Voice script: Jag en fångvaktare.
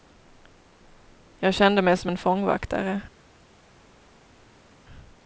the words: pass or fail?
fail